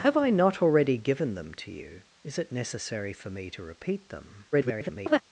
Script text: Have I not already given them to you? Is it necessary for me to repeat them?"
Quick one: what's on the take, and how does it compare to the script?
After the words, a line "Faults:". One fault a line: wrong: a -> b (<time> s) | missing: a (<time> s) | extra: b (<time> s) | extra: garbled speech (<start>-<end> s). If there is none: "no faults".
Have I not already given them to you? Is it necessary for me to repeat them?" [garbled]
Faults:
extra: garbled speech (4.5-5.2 s)